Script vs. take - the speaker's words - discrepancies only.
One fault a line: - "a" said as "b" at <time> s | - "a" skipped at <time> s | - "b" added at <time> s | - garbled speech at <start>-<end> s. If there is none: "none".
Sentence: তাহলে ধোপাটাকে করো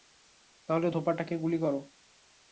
- "গুলি" added at 1.4 s